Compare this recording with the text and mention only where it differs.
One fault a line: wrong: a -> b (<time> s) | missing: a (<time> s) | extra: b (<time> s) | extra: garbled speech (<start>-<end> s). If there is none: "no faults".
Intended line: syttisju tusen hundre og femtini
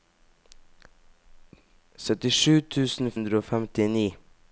no faults